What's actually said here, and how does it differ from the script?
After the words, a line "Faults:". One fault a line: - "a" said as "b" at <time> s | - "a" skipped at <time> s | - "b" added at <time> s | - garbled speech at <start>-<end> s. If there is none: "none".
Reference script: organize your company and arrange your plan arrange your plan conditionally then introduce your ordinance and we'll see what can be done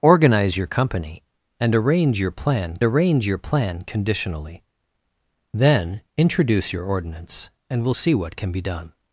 organize your company and arrange your plan arrange your plan conditionally then introduce your ordinance and we'll see what can be done
Faults:
none